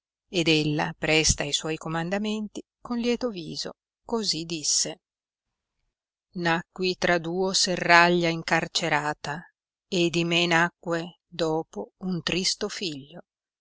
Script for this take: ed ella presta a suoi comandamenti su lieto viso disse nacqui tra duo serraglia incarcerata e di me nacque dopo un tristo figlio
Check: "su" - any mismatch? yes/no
yes